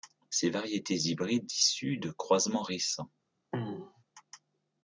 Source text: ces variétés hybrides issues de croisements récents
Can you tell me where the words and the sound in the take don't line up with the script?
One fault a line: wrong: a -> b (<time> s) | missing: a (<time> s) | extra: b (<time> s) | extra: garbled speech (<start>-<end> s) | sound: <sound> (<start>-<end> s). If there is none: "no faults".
sound: throat clearing (3.5-4.0 s)